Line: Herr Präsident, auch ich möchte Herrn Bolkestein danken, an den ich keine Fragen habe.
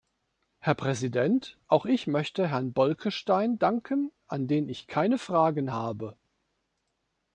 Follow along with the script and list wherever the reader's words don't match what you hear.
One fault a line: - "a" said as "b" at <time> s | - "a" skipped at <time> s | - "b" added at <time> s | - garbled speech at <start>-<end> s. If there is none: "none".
none